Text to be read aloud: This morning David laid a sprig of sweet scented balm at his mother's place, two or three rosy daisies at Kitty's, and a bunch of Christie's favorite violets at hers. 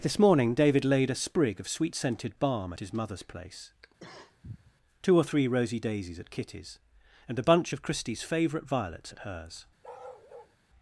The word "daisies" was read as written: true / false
true